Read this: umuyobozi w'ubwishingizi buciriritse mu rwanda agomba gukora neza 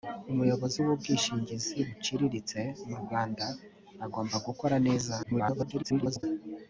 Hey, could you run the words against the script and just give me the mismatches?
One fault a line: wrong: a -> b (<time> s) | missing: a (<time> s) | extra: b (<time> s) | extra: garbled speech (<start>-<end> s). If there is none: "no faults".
extra: garbled speech (5.2-6.2 s)